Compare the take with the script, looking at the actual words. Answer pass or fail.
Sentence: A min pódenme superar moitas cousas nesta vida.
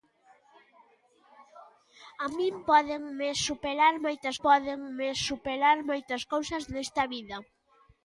fail